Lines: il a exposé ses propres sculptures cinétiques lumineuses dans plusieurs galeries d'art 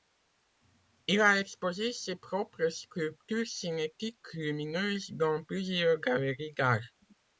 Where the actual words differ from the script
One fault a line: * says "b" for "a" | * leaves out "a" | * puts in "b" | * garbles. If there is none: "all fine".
all fine